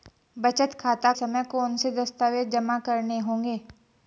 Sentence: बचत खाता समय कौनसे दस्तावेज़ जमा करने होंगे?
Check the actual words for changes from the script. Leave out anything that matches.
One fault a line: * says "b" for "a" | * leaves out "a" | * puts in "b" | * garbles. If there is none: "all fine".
all fine